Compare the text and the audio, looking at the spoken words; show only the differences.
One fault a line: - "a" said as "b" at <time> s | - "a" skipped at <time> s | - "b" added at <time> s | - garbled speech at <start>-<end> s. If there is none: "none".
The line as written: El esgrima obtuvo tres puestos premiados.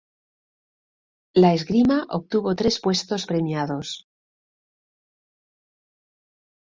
- "El" said as "La" at 1.4 s